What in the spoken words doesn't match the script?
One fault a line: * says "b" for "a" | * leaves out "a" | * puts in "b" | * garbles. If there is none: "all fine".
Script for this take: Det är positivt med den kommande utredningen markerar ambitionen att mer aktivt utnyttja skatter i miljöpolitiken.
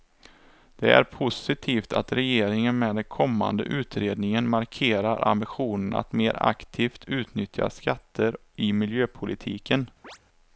* puts in "att regeringen"